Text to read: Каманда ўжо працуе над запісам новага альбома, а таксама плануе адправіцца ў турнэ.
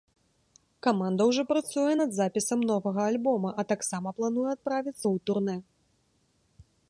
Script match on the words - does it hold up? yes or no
yes